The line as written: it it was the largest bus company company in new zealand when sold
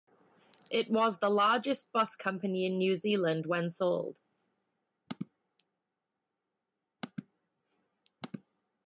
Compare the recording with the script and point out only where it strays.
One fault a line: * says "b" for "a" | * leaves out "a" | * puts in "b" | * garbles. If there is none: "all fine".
* leaves out "it"
* leaves out "company"